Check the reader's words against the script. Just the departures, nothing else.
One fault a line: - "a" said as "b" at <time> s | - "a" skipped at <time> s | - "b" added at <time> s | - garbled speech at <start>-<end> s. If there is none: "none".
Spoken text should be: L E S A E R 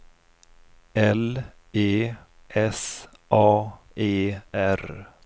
none